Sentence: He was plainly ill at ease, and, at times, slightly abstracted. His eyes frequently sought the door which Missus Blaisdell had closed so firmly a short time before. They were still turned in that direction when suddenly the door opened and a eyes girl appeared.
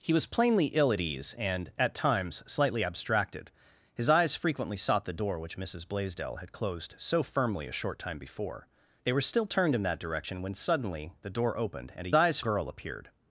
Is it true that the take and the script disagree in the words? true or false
false